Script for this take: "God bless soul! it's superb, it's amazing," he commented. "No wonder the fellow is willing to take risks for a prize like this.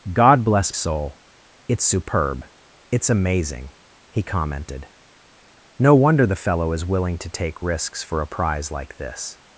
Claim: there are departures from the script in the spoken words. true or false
false